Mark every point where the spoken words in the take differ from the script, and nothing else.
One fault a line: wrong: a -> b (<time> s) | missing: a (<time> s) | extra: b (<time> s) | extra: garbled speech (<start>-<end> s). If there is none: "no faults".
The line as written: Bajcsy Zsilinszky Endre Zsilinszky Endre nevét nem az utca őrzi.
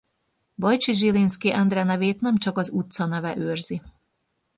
missing: Zsilinszky Endre (1.8 s)
extra: csak (2.4 s)
extra: neve (3.1 s)